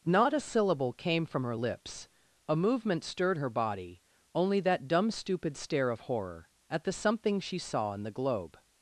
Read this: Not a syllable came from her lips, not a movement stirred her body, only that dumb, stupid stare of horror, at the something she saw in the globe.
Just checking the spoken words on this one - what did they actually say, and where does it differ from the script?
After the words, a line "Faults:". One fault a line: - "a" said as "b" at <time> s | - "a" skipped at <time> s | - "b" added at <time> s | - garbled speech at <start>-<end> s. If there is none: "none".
Not a syllable came from her lips, a movement stirred her body, only that dumb, stupid stare of horror, at the something she saw in the globe.
Faults:
- "not" skipped at 2.1 s